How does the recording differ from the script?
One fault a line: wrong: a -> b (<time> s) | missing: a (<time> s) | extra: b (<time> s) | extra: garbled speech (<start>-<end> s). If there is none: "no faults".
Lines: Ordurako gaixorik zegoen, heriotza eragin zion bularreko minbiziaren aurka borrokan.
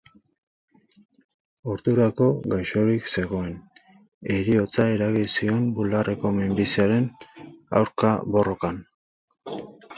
no faults